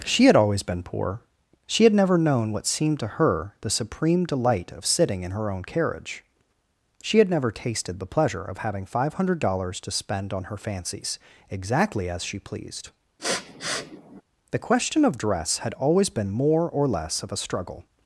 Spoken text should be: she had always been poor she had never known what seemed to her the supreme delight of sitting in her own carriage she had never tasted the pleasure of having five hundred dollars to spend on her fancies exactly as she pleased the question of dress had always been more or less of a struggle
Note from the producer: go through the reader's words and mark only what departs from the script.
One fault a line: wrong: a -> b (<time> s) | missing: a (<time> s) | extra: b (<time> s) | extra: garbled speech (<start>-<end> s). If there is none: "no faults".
no faults